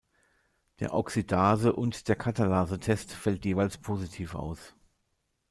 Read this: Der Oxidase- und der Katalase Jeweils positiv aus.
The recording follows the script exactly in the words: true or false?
false